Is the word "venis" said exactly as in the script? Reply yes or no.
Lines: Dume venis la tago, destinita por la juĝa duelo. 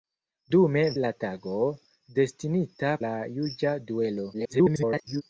no